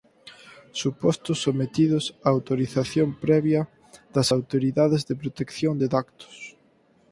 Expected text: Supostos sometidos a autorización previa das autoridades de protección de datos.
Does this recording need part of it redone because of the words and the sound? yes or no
no